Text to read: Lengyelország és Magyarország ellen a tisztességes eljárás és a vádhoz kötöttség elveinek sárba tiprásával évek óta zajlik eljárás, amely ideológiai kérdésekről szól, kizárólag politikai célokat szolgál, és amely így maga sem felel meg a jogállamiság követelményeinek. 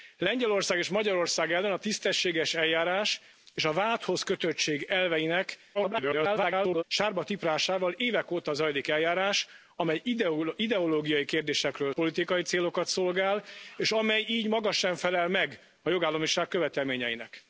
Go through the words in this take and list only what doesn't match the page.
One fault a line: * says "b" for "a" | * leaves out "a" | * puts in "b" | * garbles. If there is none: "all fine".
* garbles
* leaves out "szól kizárólag"